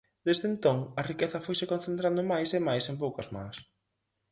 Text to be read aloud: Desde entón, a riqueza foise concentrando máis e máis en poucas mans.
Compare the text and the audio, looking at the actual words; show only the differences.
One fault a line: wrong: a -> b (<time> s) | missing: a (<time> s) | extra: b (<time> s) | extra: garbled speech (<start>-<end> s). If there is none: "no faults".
no faults